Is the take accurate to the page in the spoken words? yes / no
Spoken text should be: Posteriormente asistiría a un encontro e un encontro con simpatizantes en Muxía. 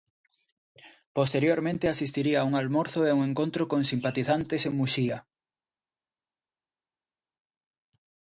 no